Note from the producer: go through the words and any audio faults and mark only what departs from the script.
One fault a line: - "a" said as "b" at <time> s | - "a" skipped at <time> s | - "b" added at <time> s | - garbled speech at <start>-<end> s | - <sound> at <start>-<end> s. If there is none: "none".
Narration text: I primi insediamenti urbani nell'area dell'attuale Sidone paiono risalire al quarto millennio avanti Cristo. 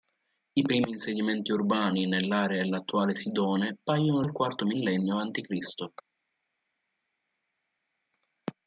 - "risalire" skipped at 4.2 s